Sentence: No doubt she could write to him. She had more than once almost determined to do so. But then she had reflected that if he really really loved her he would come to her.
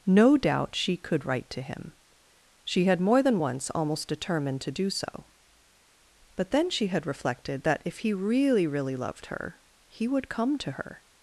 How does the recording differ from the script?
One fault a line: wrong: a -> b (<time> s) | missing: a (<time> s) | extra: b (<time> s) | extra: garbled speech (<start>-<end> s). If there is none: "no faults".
no faults